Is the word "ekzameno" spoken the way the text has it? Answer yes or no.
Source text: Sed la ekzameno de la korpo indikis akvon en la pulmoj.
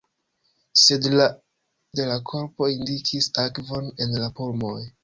no